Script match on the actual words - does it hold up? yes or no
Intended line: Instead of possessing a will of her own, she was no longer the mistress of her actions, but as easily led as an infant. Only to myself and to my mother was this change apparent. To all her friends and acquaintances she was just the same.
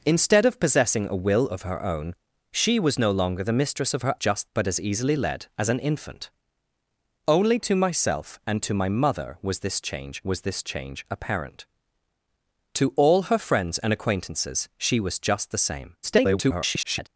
no